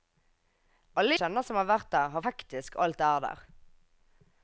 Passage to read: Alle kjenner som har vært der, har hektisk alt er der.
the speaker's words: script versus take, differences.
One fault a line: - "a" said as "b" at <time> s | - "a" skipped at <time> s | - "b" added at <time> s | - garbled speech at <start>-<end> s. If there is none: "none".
none